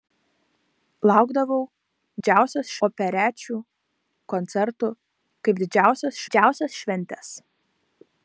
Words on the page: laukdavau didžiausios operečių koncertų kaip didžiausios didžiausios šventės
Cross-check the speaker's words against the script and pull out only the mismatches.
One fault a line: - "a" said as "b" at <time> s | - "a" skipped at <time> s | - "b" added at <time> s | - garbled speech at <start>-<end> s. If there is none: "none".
none